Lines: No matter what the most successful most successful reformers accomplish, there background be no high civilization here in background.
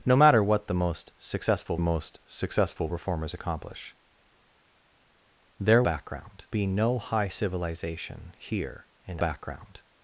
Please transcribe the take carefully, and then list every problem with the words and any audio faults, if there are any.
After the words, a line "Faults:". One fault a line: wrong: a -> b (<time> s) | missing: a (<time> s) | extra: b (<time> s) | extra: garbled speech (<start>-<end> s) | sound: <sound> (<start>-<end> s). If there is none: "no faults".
No matter what the most successful most successful reformers accomplish, there background be no high civilization here in background.
Faults:
no faults